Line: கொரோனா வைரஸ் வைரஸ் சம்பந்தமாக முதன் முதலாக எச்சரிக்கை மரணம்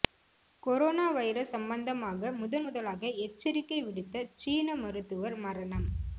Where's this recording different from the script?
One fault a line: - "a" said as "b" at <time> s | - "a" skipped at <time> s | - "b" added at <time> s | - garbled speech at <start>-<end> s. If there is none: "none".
- "வைரஸ்" skipped at 1.5 s
- "விடுத்த சீன மருத்துவர்" added at 3.8 s